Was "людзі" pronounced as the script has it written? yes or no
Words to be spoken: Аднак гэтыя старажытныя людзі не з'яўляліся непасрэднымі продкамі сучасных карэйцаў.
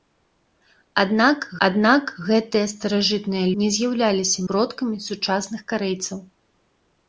no